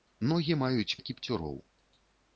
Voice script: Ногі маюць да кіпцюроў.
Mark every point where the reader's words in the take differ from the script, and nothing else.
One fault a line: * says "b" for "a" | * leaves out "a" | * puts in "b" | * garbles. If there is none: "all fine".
all fine